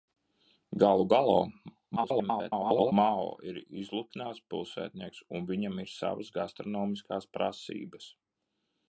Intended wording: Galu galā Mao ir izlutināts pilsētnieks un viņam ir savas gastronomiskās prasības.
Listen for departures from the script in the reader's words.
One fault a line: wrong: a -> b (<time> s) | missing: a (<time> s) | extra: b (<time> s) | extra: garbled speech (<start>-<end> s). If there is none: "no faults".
extra: garbled speech (2.0-2.9 s)